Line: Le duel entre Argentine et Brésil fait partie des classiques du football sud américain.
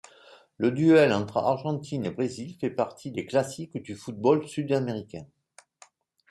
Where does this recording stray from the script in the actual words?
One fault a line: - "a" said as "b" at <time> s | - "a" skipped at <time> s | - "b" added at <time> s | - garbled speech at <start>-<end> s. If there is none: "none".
none